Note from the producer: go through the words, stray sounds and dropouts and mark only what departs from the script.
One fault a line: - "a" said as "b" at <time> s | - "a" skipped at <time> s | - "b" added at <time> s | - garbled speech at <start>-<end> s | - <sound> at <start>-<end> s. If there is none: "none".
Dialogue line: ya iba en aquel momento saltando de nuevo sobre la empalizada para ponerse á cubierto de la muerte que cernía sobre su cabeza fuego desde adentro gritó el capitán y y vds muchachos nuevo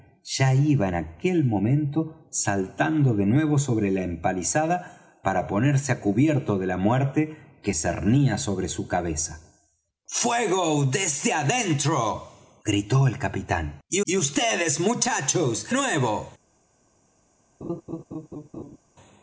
- laugh at 17.6-18.8 s